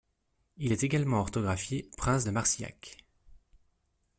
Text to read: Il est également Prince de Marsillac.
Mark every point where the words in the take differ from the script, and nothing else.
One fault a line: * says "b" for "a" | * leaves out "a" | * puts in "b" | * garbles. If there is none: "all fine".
* puts in "orthographié"